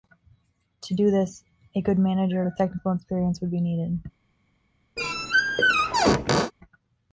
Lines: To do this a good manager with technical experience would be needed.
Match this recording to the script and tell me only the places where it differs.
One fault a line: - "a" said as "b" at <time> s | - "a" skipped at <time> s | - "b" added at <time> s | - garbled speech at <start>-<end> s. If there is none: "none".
none